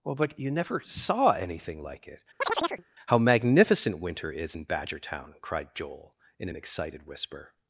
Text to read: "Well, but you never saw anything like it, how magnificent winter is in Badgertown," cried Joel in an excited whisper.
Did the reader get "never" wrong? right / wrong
right